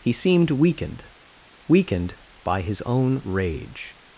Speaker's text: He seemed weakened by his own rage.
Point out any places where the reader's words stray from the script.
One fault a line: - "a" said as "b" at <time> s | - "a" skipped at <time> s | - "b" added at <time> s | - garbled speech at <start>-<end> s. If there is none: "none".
- "weakened" added at 1.7 s